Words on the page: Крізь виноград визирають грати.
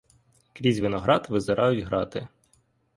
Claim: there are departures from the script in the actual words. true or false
false